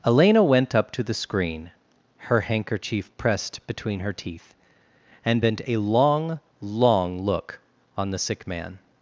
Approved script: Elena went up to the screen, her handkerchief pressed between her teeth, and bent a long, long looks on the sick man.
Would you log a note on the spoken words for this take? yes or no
yes